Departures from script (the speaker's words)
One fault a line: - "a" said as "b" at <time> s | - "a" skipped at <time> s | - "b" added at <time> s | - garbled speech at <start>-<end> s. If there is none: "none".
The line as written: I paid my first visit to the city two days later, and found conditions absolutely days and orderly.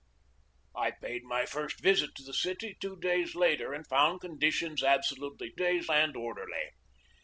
none